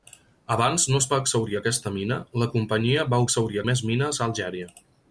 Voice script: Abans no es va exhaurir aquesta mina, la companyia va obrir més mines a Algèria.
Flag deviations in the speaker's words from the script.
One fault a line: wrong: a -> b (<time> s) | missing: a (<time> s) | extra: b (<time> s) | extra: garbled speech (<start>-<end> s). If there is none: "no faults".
wrong: obrir -> exhaurir (3.3 s)